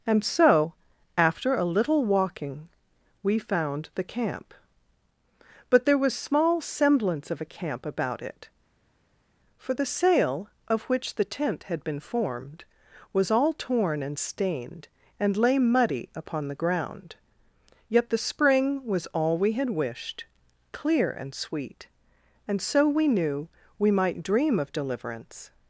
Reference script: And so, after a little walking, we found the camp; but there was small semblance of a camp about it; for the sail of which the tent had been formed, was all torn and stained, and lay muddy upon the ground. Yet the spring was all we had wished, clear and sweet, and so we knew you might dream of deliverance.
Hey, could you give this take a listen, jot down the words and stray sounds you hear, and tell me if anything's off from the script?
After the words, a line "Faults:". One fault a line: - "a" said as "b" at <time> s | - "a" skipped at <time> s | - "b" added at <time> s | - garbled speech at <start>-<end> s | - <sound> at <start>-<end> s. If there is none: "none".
And so, after a little walking, we found the camp; but there was small semblance of a camp about it; for the sail of which the tent had been formed, was all torn and stained, and lay muddy upon the ground. Yet the spring was all we had wished, clear and sweet, and so we knew we might dream of deliverance.
Faults:
- "you" said as "we" at 23.8 s